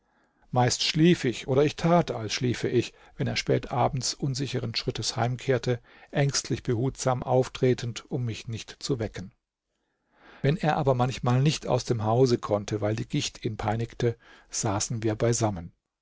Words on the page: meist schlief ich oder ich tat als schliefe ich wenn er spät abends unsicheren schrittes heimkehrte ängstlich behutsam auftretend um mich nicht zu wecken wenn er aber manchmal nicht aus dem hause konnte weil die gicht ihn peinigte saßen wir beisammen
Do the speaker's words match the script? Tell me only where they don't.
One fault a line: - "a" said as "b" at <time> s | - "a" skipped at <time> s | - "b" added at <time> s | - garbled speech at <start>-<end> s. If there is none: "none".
none